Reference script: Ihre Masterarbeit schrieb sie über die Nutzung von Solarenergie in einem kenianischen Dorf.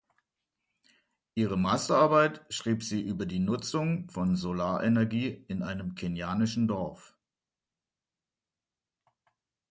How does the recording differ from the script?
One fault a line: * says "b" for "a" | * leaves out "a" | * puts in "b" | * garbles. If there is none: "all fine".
all fine